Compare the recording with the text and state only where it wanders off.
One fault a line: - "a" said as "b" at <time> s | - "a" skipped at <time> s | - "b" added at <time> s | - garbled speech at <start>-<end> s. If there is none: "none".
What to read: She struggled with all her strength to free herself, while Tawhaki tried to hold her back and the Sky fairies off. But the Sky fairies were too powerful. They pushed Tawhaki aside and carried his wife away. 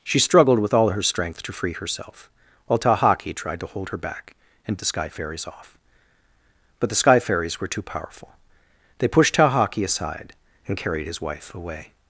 none